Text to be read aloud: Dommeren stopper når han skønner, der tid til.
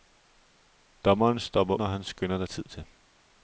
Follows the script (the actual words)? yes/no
yes